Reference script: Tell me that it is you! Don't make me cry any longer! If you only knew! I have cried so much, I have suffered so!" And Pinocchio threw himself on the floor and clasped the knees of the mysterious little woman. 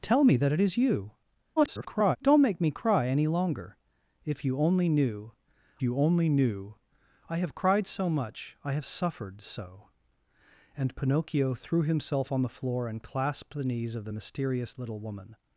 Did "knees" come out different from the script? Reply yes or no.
no